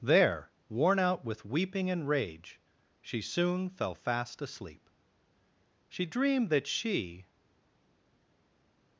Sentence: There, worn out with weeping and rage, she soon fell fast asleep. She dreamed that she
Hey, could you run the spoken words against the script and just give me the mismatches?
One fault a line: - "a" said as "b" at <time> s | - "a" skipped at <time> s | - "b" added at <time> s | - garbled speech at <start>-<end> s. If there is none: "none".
none